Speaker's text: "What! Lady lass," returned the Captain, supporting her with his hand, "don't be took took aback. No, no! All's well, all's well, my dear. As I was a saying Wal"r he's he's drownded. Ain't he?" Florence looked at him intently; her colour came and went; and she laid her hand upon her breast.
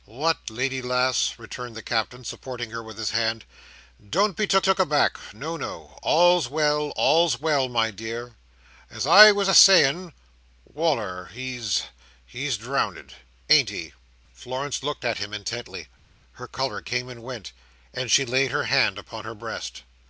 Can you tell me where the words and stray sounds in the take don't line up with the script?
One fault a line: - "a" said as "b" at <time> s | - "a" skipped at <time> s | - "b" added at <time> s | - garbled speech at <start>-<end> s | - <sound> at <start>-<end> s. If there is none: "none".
none